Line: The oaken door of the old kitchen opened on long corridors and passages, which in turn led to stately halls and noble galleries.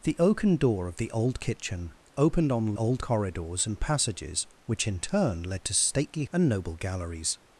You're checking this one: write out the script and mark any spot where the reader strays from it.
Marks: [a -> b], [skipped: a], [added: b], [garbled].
The oaken door of the old kitchen opened on [long -> old] corridors and passages, which in turn led to stately [skipped: halls] and noble galleries.